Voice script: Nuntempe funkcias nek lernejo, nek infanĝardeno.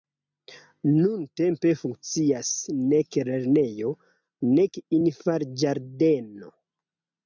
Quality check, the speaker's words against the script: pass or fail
pass